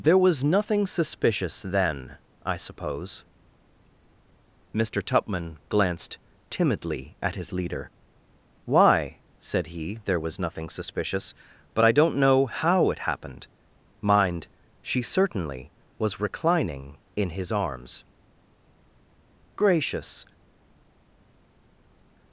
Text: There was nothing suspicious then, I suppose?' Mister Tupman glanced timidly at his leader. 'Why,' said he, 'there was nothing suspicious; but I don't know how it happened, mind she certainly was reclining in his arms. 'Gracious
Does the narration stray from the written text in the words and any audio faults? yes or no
no